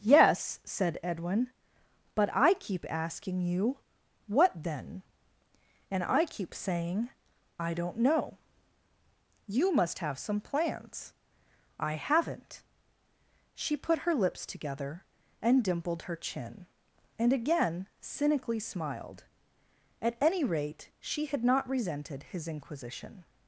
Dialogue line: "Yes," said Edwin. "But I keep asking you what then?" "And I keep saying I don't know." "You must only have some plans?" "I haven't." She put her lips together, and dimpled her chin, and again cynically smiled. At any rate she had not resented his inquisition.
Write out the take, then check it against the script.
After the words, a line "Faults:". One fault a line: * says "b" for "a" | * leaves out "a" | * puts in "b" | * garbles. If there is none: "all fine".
"Yes," said Edwin. "But I keep asking you what then?" "And I keep saying I don't know." "You must have some plans?" "I haven't." She put her lips together, and dimpled her chin, and again cynically smiled. At any rate she had not resented his inquisition.
Faults:
* leaves out "only"